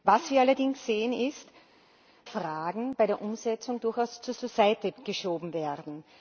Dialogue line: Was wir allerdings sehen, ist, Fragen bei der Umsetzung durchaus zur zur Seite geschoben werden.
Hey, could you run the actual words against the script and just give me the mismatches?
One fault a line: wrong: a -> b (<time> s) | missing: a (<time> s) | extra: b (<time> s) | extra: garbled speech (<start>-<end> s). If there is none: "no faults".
no faults